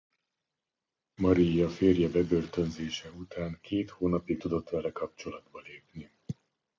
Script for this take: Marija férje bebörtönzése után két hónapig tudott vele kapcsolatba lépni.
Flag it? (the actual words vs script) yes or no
no